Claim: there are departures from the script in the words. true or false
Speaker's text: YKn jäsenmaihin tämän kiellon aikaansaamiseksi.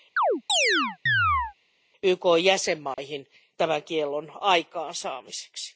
false